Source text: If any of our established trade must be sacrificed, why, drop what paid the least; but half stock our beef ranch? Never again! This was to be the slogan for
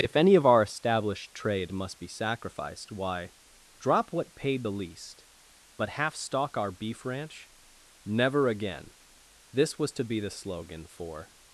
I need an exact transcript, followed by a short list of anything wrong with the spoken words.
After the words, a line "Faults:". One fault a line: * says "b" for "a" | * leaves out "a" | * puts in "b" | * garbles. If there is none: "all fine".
If any of our established trade must be sacrificed, why, drop what paid the least; but half stock our beef ranch? Never again! This was to be the slogan for
Faults:
all fine